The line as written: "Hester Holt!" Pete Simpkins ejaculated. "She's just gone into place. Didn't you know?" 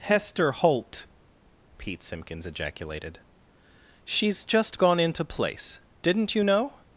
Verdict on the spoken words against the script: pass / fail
pass